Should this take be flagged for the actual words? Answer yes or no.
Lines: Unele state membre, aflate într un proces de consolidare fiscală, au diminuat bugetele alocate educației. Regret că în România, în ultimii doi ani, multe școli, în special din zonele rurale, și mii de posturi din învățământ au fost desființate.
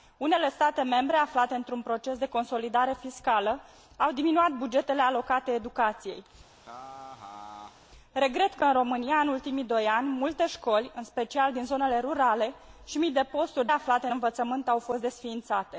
yes